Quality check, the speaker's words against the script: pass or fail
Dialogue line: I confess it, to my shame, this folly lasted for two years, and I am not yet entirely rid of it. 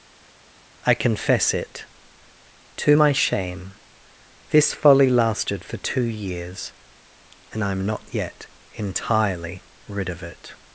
pass